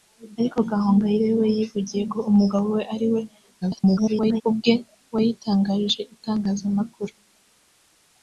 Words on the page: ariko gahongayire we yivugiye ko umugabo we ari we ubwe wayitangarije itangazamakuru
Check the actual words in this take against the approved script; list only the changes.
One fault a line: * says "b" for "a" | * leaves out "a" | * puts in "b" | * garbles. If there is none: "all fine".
* garbles